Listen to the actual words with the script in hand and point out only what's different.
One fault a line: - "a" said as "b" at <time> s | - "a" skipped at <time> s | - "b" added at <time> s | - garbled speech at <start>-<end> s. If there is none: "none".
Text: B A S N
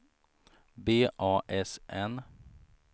none